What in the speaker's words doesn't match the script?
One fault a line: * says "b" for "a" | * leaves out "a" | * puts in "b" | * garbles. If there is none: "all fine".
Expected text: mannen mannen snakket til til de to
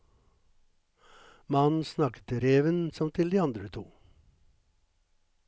* leaves out "mannen"
* puts in "reven som"
* puts in "andre"